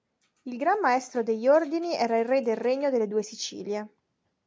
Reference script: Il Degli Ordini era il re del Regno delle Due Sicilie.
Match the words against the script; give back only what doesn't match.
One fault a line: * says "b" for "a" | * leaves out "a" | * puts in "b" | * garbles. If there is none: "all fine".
* puts in "Gran Maestro"